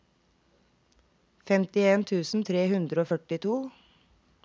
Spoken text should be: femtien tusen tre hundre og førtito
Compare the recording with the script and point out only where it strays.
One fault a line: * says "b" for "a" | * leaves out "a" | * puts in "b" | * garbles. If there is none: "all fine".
all fine